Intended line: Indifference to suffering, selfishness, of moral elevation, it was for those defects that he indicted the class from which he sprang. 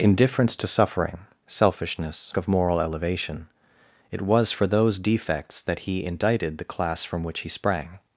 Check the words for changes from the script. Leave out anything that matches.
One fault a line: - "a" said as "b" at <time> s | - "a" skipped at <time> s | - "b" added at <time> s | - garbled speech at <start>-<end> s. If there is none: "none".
none